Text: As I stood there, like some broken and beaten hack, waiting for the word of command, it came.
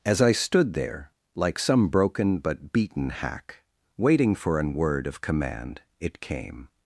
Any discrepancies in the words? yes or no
yes